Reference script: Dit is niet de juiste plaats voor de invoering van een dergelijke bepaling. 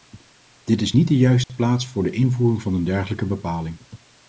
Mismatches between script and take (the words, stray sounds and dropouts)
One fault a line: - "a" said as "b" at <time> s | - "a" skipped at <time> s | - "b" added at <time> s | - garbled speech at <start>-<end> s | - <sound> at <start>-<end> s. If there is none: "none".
- dropout at 1.4-1.5 s